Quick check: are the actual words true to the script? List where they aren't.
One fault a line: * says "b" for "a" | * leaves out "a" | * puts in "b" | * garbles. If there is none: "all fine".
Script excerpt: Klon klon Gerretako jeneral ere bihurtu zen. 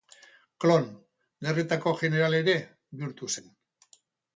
* leaves out "klon"